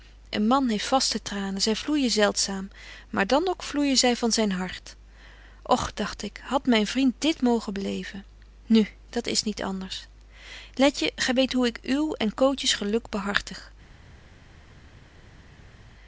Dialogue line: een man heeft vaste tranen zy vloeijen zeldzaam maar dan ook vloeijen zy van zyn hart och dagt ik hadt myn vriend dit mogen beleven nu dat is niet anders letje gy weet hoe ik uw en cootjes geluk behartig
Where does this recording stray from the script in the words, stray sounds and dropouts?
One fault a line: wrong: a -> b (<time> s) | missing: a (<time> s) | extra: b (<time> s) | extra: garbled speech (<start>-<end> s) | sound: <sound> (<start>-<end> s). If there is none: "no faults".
no faults